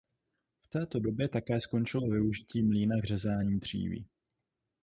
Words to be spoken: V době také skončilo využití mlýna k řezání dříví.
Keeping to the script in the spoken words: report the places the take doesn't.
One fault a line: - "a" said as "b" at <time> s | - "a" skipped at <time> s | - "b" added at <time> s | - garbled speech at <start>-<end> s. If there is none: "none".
- "této" added at 0.7 s